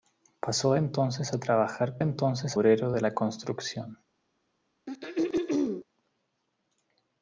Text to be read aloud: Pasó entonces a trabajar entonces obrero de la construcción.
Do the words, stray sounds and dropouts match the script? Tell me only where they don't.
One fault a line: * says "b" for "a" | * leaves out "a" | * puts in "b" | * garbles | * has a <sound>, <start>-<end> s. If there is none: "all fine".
* has a throat clearing, 4.9-5.8 s